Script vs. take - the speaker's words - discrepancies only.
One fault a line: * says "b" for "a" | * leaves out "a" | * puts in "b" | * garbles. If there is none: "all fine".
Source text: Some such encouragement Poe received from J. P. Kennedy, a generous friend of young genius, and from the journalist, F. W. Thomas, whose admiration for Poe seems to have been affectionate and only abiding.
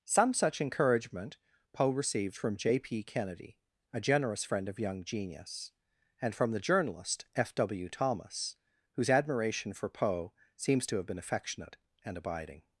* leaves out "only"